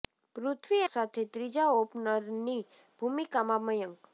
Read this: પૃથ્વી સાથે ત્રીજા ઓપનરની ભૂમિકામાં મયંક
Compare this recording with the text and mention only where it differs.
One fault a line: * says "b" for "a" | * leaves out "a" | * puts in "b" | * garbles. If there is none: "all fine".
all fine